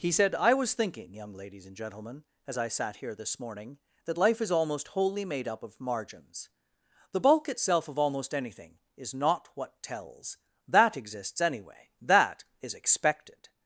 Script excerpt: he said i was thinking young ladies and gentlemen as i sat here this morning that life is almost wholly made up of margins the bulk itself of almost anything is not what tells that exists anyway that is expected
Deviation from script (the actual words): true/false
false